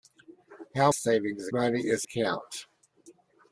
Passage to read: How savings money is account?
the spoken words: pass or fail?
pass